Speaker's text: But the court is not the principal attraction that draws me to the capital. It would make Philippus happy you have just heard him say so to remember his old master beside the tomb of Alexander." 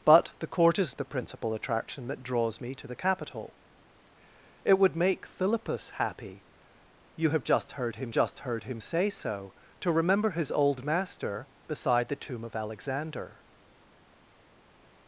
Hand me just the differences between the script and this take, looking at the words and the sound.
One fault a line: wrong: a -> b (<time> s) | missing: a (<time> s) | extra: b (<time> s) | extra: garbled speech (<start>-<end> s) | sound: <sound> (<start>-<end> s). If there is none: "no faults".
missing: not (0.9 s)
extra: just heard him (8.1 s)